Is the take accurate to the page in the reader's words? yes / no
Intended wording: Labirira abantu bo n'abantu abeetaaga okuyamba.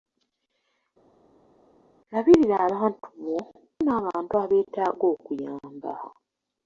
yes